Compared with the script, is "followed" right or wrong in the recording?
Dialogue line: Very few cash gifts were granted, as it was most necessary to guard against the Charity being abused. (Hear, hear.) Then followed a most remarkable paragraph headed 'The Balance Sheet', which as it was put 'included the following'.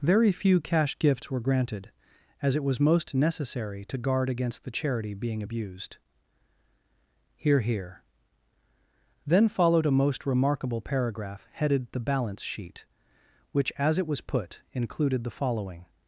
right